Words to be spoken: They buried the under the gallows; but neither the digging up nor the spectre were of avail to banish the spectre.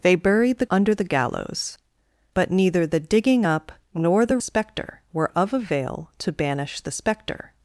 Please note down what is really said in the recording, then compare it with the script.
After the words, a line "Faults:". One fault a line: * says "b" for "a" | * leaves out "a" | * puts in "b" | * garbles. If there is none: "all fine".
They buried the under the gallows; but neither the digging up nor the spectre were of avail to banish the spectre.
Faults:
all fine